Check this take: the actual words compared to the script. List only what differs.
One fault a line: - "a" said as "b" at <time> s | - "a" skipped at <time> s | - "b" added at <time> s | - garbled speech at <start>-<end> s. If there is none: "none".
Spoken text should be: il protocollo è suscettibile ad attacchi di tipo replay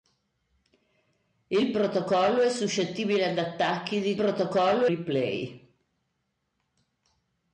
- "tipo" said as "protocollo" at 4.1 s